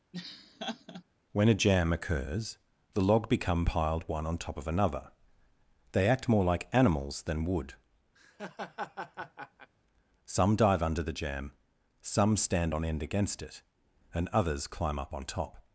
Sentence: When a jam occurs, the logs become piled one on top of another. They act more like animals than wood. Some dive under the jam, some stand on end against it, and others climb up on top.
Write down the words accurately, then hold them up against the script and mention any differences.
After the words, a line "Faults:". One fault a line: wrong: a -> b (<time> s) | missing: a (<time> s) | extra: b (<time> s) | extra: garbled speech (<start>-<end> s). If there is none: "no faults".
When a jam occurs, the log become piled one on top of another. They act more like animals than wood. Some dive under the jam, some stand on end against it, and others climb up on top.
Faults:
wrong: logs -> log (3.0 s)